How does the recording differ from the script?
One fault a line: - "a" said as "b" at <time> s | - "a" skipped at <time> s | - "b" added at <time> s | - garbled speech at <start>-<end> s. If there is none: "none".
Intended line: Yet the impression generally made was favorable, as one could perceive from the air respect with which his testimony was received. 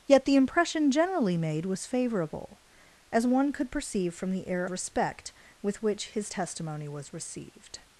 none